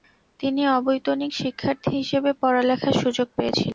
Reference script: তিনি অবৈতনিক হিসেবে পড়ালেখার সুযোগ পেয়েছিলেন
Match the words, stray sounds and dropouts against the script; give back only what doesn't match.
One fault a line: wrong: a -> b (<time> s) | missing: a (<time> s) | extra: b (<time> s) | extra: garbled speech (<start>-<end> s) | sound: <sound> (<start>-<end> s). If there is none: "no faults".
extra: শিক্ষার্থী (1.3 s)